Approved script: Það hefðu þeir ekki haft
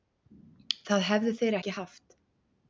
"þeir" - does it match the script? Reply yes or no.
yes